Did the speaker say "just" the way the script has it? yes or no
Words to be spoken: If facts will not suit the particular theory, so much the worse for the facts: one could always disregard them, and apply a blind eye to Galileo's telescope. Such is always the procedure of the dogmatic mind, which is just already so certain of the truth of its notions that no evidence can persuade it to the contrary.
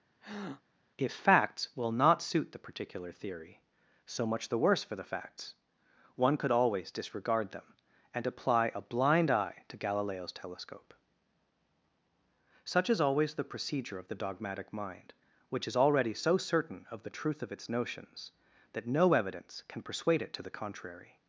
no